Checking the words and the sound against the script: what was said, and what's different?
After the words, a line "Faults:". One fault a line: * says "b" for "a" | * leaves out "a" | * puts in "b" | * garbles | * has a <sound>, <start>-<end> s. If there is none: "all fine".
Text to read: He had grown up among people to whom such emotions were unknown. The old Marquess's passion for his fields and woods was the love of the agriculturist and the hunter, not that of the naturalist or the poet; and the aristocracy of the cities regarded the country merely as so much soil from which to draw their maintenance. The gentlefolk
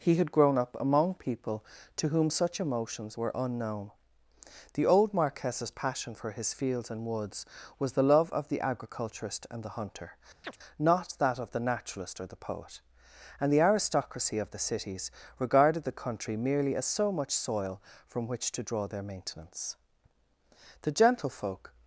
He had grown up among people to whom such emotions were unknown. The old Marquess's passion for his fields and woods was the love of the agriculturist and the hunter, not that of the naturalist or the poet; and the aristocracy of the cities regarded the country merely as so much soil from which to draw their maintenance. The gentlefolk
Faults:
* has a chirp, 10.4-10.6 s